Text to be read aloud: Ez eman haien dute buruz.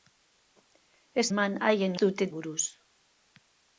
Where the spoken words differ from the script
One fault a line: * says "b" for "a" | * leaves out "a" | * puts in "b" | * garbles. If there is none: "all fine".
all fine